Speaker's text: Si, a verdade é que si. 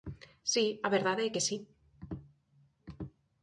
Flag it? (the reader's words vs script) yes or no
no